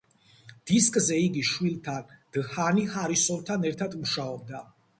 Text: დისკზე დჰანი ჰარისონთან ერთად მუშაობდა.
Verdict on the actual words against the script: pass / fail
fail